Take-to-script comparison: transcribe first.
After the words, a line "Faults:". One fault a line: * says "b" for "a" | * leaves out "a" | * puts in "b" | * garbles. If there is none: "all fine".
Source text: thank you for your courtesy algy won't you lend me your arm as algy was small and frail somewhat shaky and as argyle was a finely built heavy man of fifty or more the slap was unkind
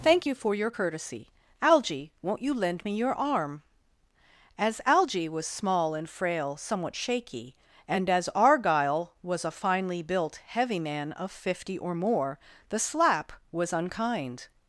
thank you for your courtesy algy won't you lend me your arm as algy was small and frail somewhat shaky and as argyle was a finely built heavy man of fifty or more the slap was unkind
Faults:
all fine